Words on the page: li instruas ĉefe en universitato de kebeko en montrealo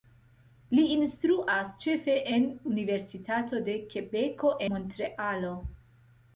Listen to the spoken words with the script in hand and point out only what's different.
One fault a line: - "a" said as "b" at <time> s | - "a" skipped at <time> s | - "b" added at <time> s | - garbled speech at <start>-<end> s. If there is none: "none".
- "en" skipped at 4.6 s